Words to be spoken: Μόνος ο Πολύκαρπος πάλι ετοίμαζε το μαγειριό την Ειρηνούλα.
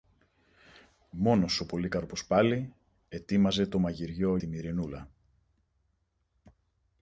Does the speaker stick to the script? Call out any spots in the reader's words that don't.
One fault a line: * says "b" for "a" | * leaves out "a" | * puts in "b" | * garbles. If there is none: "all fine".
all fine